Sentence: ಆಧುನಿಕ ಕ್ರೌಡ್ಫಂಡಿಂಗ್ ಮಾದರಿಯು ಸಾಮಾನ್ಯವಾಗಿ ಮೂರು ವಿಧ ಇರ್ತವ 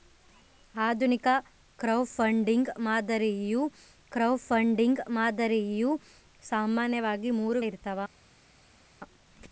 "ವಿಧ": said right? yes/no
no